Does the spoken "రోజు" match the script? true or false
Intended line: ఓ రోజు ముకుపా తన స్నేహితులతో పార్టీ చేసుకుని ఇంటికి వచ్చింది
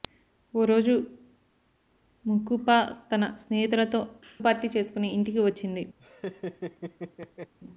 true